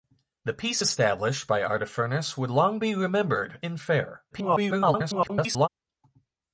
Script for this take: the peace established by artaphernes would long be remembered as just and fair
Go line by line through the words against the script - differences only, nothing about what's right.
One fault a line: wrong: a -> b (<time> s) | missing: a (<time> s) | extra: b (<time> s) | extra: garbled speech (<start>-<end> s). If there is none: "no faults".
missing: as just (3.6 s)
extra: garbled speech (4.3-5.7 s)